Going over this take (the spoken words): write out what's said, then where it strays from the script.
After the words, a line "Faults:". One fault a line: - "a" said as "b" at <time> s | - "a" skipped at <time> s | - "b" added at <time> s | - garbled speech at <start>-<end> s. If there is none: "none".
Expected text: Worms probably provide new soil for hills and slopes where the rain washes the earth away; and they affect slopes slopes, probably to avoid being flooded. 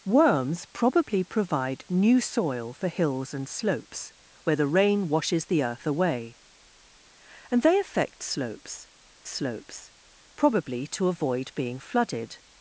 Worms probably provide new soil for hills and slopes where the rain washes the earth away; and they affect slopes slopes, probably to avoid being flooded.
Faults:
none